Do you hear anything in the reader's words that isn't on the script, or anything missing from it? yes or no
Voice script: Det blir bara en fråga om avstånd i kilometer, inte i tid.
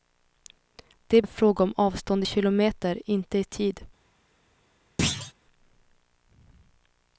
yes